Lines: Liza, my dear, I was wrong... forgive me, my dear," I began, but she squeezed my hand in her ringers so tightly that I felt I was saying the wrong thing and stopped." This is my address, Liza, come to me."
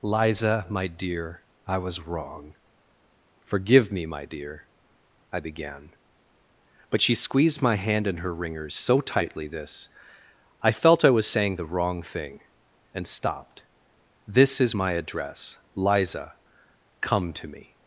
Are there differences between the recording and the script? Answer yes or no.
yes